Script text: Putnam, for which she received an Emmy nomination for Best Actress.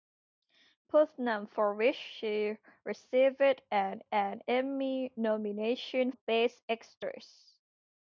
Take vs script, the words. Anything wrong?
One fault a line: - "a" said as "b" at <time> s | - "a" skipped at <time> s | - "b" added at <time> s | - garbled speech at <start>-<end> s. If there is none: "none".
- "an" added at 4.1 s
- "for" skipped at 6.1 s